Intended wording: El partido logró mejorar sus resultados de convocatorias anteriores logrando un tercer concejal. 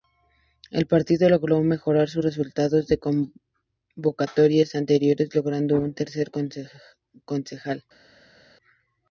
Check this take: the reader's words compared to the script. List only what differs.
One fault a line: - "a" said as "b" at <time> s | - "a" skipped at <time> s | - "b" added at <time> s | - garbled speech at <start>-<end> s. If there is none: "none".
none